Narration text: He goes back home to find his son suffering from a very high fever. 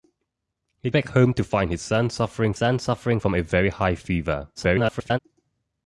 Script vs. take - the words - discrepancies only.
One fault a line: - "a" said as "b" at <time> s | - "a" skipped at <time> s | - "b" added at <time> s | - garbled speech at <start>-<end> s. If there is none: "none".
- "goes" skipped at 0.9 s
- "son suffering" added at 2.5 s
- garbled speech at 4.6-5.2 s